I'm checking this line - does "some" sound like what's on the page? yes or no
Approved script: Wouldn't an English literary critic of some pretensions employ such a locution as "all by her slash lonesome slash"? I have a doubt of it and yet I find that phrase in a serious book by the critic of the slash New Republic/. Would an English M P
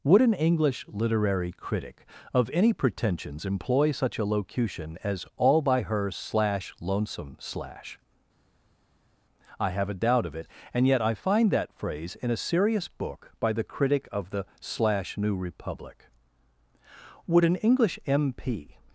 no